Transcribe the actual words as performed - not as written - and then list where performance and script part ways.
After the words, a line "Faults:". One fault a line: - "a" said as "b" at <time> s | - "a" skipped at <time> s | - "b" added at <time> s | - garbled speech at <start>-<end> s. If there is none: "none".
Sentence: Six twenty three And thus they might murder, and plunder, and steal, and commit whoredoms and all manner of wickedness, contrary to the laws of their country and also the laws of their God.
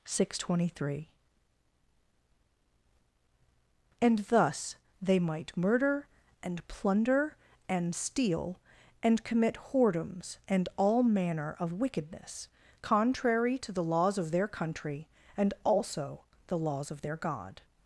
Six twenty three And thus they might murder, and plunder, and steal, and commit whoredoms and all manner of wickedness, contrary to the laws of their country and also the laws of their God.
Faults:
none